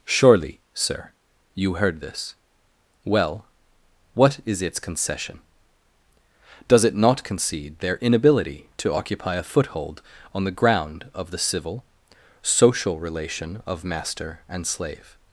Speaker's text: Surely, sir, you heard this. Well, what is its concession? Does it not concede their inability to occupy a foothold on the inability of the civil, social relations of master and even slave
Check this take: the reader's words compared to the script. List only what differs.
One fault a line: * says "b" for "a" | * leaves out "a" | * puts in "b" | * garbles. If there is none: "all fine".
* says "ground" for "inability"
* says "relation" for "relations"
* leaves out "even"